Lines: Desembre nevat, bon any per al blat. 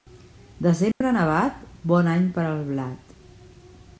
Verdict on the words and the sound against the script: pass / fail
fail